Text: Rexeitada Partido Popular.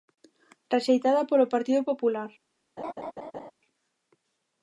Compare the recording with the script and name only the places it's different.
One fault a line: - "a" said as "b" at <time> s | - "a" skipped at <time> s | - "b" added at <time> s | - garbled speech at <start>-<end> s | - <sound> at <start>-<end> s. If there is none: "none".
- "polo" added at 1.3 s
- laugh at 2.8-3.5 s